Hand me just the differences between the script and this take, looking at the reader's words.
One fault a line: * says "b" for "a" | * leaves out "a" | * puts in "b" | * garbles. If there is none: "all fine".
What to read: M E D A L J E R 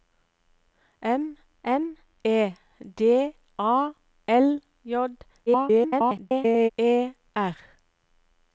* puts in "m"
* garbles